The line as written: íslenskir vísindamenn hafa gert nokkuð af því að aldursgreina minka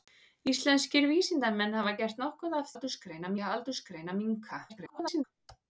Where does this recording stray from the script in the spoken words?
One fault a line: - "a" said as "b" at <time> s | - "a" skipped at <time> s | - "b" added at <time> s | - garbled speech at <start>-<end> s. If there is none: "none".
- "því" said as "aldursgreina" at 2.7 s
- garbled speech at 4.7-5.2 s